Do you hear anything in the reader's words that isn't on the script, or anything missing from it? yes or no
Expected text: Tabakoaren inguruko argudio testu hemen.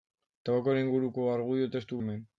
no